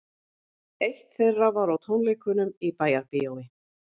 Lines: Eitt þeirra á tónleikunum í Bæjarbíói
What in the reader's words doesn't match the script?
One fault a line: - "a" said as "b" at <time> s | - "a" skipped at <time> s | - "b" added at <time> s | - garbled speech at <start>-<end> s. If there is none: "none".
- "var" added at 1.6 s